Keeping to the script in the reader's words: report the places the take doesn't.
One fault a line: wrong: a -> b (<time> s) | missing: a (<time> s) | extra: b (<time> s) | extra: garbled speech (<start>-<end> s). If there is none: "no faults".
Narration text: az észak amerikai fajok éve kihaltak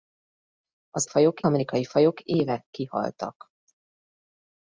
wrong: észak -> fajok (1.0 s)